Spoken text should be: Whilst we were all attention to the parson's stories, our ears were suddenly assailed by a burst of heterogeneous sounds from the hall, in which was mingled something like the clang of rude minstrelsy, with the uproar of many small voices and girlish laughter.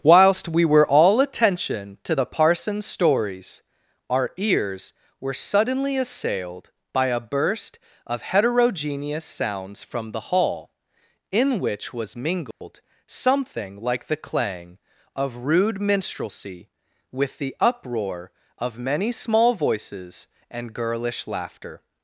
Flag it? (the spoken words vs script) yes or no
no